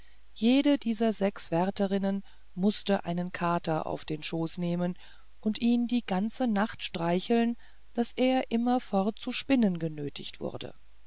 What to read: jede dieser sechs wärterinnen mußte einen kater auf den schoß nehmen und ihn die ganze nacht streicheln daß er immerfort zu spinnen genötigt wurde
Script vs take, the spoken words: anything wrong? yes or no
no